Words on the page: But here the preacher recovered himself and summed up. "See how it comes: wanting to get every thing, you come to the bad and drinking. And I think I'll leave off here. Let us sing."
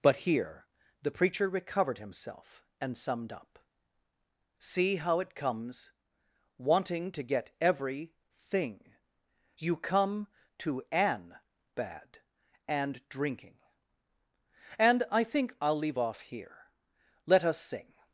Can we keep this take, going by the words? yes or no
no